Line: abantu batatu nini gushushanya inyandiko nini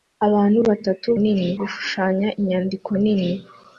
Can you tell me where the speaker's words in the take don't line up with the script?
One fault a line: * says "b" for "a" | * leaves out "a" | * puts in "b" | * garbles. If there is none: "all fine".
all fine